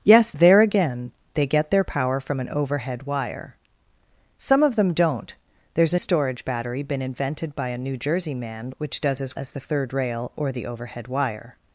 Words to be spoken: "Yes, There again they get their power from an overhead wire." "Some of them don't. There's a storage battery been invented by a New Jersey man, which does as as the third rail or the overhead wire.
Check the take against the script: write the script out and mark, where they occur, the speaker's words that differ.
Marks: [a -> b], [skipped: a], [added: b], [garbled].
"Yes, There again they get their power from an overhead wire." "Some of them don't. There's a storage battery been invented by a New Jersey man, which does as as the third rail or the overhead wire.